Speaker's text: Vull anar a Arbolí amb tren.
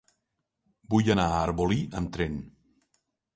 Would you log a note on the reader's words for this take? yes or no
no